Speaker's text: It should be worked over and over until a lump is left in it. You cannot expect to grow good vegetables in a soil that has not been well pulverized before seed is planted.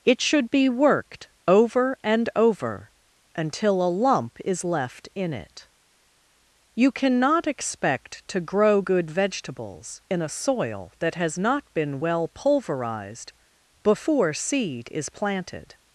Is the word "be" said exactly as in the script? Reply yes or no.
yes